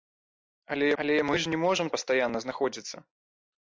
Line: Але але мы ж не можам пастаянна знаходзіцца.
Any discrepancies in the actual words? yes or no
no